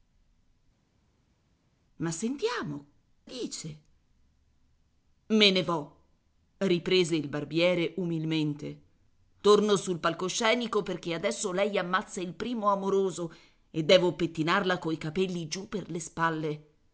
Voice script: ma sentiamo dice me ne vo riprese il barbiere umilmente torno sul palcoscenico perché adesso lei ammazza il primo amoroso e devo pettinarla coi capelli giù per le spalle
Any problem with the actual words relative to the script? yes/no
no